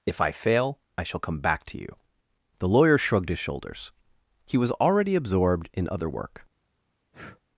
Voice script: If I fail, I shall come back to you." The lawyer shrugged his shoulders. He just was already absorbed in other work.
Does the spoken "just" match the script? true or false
false